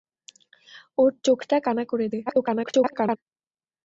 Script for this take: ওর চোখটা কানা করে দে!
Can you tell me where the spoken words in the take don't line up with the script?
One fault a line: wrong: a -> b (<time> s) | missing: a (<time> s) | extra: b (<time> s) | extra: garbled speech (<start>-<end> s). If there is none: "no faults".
extra: garbled speech (2.3-3.2 s)